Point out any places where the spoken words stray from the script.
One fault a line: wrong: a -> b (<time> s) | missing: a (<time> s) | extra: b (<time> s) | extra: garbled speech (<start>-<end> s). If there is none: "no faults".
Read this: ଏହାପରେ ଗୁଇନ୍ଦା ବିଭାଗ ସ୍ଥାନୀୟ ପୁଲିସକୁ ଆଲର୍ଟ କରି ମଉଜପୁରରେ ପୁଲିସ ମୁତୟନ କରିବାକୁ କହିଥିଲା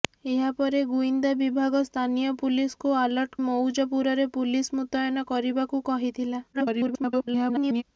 missing: କରି (3.4 s)
extra: garbled speech (6.5-7.8 s)